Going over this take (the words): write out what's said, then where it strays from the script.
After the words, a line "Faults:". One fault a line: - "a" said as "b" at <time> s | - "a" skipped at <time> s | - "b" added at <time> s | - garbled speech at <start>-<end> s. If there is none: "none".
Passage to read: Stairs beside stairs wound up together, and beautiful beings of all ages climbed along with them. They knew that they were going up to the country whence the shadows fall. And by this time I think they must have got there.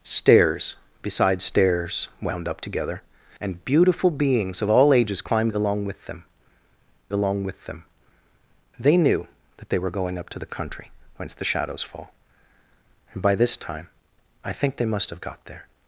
Stairs beside stairs wound up together, and beautiful beings of all ages climbed along with them along with them. They knew that they were going up to the country whence the shadows fall. And by this time I think they must have got there.
Faults:
- "along with them" added at 7.1 s